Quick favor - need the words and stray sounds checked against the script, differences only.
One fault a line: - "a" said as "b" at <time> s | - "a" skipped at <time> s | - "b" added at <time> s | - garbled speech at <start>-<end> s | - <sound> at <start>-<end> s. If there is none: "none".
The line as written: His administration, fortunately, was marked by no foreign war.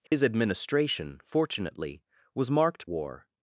- dropout at 0.1-0.1 s
- "by no foreign" skipped at 2.9 s